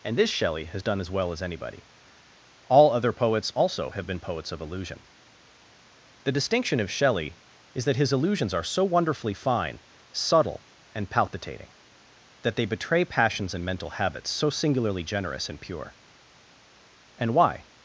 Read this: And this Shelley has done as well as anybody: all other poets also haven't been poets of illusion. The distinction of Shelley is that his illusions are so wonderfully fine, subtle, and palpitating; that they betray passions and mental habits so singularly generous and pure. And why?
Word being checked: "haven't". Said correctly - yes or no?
no